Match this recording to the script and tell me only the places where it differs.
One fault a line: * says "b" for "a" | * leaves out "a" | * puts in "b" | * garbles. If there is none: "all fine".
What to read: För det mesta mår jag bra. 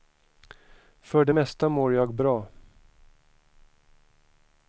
all fine